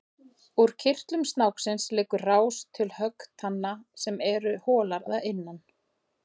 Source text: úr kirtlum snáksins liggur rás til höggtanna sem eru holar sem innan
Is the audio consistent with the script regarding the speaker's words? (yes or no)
no